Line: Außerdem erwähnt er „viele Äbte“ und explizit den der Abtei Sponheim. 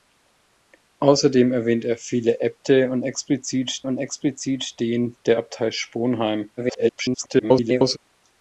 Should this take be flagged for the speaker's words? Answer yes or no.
yes